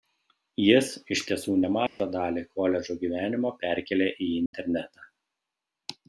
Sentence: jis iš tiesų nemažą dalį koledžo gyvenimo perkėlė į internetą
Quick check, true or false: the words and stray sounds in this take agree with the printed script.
false